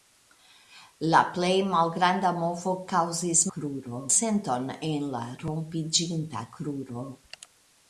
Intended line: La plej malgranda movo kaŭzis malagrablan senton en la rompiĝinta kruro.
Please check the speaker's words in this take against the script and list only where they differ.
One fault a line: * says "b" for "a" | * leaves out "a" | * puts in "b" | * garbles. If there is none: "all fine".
* says "kruro" for "malagrablan"